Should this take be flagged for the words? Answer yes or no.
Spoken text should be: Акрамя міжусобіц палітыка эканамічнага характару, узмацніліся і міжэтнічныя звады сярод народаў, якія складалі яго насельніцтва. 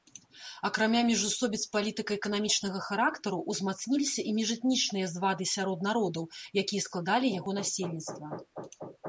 no